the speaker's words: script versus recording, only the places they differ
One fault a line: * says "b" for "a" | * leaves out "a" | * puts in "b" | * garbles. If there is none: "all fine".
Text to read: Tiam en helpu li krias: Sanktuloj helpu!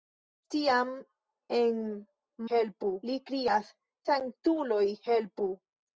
all fine